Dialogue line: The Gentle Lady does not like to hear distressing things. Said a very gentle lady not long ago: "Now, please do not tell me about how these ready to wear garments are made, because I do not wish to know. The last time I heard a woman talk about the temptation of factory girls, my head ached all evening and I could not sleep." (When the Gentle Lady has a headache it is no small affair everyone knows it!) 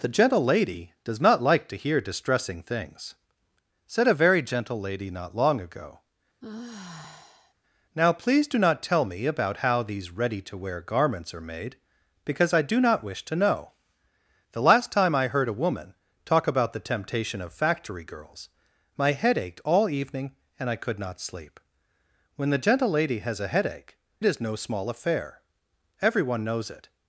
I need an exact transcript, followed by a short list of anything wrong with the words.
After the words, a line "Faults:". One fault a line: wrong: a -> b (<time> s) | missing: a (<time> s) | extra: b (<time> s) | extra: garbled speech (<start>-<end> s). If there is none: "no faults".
The Gentle Lady does not like to hear distressing things. Said a very gentle lady not long ago: "Now, please do not tell me about how these ready to wear garments are made, because I do not wish to know. The last time I heard a woman talk about the temptation of factory girls, my head ached all evening and I could not sleep." (When the Gentle Lady has a headache is no small affair everyone knows it!)
Faults:
missing: it (24.0 s)